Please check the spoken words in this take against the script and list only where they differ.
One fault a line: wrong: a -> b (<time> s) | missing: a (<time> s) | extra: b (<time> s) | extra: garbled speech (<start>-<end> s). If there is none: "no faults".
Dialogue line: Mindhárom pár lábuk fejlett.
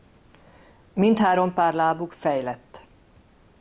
no faults